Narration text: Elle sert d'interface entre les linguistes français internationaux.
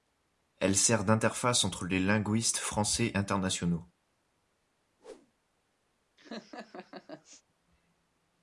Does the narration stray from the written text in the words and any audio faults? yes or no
yes